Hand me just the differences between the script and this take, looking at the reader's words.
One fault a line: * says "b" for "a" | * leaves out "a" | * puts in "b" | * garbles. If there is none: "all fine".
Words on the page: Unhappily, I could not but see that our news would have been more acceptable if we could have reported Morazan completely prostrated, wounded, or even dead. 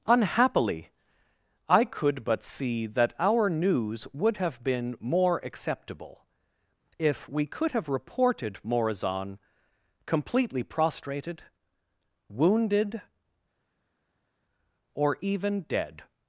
* leaves out "not"